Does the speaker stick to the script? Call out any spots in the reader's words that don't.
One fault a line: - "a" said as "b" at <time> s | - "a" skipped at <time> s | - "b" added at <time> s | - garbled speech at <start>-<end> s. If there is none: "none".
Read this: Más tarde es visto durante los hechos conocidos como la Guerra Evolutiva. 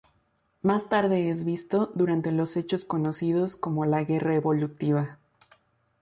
none